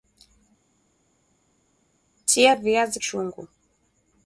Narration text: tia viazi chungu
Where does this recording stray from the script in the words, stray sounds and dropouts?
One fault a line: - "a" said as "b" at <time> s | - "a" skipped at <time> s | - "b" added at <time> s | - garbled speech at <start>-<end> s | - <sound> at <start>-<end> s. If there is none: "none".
none